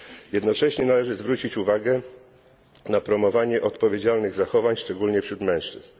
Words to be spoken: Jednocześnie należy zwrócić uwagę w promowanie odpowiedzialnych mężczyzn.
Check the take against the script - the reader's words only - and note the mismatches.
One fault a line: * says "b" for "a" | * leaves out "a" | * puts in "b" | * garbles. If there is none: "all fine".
* says "na" for "w"
* puts in "zachowań szczególnie wśród"